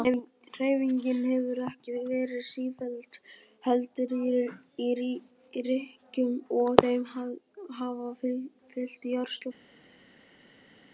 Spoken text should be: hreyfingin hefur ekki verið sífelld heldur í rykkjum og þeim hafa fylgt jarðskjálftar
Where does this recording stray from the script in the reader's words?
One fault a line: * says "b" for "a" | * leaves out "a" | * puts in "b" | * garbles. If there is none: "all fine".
all fine